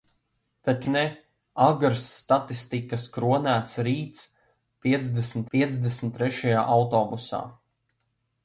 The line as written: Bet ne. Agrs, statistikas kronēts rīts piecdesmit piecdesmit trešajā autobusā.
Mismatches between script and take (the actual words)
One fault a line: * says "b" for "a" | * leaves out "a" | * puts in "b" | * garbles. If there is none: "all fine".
all fine